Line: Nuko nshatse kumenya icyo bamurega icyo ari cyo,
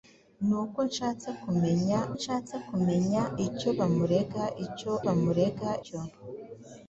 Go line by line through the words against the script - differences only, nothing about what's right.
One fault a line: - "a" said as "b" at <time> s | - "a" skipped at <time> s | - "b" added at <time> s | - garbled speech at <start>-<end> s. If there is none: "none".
- "nshatse kumenya" added at 2.2 s
- "ari" said as "bamurega" at 5.0 s